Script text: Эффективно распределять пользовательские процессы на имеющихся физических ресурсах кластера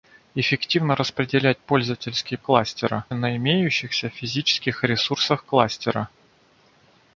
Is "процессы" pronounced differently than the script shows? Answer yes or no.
yes